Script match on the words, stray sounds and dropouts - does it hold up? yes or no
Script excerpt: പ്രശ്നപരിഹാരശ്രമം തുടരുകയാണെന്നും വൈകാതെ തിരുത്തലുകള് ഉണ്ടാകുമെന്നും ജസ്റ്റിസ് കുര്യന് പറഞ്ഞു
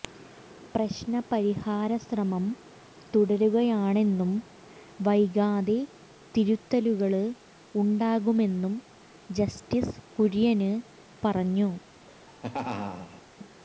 no